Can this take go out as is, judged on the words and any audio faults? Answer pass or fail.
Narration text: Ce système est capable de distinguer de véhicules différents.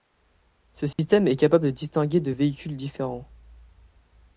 fail